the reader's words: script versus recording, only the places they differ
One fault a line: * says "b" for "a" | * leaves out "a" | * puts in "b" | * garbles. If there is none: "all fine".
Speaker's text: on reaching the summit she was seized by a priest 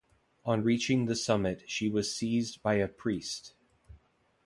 all fine